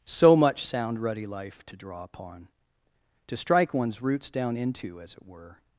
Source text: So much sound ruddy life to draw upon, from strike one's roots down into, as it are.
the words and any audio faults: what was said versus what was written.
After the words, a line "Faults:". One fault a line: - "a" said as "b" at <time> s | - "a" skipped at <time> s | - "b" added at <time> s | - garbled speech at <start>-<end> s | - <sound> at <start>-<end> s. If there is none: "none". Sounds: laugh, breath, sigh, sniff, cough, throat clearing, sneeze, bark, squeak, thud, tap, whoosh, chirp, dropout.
So much sound ruddy life to draw upon, to strike one's roots down into, as it were.
Faults:
- "from" said as "to" at 3.3 s
- "are" said as "were" at 5.3 s